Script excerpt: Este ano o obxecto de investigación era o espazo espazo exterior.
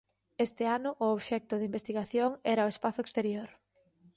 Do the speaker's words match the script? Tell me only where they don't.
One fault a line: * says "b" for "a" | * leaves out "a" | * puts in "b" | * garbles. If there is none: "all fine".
* leaves out "espazo"